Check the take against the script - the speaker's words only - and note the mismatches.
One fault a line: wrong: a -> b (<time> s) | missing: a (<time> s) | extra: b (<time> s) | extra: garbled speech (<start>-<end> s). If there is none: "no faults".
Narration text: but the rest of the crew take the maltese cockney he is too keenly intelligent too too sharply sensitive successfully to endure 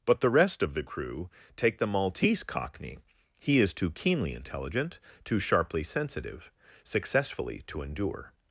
missing: too (5.4 s)